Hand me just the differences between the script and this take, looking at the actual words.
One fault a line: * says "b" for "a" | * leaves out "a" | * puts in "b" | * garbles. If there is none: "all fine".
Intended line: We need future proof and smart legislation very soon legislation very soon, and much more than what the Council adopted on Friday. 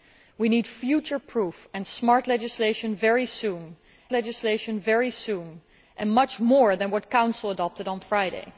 all fine